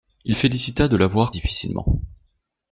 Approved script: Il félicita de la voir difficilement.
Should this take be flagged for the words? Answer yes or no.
no